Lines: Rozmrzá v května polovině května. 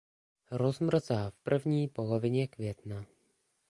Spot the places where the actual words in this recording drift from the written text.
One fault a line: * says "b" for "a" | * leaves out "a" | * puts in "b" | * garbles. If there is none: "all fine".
* says "první" for "května"